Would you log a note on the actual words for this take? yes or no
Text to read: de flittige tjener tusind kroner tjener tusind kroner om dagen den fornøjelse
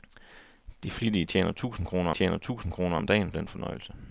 no